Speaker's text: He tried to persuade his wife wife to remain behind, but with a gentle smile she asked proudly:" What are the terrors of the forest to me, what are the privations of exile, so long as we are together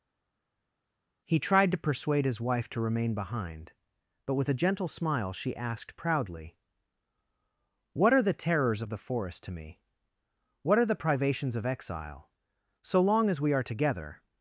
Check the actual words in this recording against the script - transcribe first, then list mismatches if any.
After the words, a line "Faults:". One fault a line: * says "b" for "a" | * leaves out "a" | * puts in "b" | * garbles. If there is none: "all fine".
He tried to persuade his wife to remain behind, but with a gentle smile she asked proudly:" What are the terrors of the forest to me, what are the privations of exile, so long as we are together
Faults:
* leaves out "wife"